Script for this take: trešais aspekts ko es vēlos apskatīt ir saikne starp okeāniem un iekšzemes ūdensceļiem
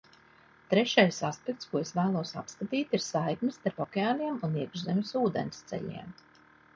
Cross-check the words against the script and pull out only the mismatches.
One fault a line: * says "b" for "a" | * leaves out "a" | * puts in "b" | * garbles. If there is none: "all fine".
all fine